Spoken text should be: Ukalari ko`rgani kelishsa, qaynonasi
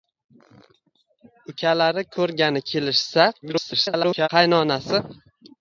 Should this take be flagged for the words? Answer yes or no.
yes